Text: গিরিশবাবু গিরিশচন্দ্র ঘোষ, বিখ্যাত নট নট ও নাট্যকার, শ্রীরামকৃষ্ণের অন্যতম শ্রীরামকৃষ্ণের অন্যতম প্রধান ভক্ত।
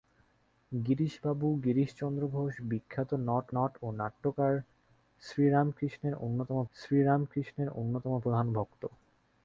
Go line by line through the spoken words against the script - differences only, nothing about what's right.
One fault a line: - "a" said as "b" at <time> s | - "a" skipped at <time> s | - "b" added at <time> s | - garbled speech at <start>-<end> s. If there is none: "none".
none